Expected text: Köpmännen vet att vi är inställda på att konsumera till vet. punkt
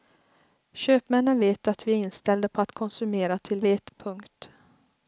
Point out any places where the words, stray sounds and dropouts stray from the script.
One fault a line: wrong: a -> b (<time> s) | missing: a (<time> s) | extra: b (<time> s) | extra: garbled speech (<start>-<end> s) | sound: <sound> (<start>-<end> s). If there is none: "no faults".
no faults